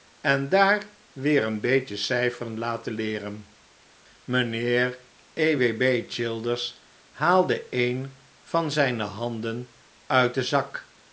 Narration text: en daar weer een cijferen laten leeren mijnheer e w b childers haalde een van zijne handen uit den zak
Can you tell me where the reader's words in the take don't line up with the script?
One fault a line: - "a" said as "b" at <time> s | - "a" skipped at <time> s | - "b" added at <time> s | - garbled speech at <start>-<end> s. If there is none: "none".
- "beetje" added at 1.6 s